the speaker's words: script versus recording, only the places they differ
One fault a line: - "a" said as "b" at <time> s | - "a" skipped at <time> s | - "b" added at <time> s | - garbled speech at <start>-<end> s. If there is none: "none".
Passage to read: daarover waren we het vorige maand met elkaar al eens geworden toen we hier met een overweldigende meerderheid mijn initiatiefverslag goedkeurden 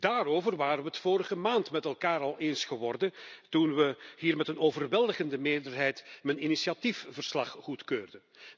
none